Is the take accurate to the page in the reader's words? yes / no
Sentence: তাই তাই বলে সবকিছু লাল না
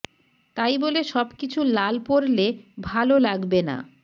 no